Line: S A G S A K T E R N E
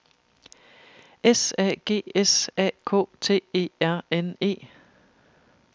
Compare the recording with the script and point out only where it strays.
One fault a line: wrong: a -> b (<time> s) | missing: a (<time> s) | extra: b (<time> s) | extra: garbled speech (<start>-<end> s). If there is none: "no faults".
no faults